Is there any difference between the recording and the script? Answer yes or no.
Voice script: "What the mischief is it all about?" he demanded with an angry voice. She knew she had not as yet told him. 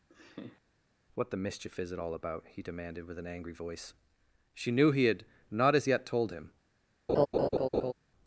yes